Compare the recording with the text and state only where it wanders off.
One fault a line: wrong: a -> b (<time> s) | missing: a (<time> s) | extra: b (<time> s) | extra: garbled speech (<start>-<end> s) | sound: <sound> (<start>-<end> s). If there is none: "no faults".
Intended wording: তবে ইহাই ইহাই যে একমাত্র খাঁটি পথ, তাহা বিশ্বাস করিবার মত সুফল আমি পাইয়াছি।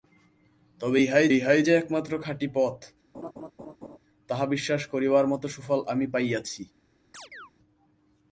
sound: laugh (3.1-4.0 s)
sound: chirp (7.1-7.5 s)